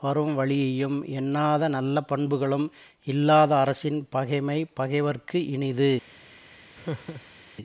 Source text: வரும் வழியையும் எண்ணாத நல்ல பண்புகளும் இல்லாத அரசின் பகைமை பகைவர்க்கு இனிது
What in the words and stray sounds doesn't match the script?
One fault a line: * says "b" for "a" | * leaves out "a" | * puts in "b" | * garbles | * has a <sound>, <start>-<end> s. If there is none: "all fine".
* has a laugh, 6.7-7.4 s